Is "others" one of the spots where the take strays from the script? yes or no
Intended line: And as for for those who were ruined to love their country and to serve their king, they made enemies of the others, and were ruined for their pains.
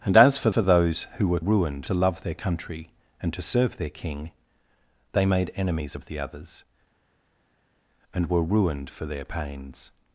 no